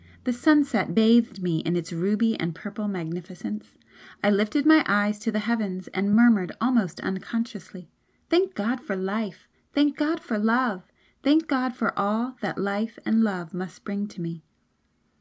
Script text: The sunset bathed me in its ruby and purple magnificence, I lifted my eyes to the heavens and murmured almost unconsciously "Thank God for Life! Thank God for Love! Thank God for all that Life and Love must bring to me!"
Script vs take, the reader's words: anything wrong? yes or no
no